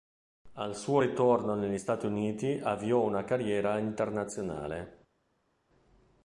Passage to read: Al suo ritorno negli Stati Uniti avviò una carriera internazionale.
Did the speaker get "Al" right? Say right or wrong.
right